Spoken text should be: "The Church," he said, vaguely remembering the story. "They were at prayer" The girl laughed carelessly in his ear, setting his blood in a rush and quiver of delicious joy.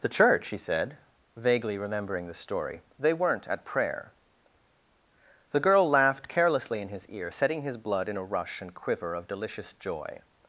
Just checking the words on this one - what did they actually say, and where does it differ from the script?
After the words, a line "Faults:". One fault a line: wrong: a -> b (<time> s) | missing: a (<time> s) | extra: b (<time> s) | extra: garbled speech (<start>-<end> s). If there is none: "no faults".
"The Church," he said, vaguely remembering the story. "They weren't at prayer" The girl laughed carelessly in his ear, setting his blood in a rush and quiver of delicious joy.
Faults:
wrong: were -> weren't (3.1 s)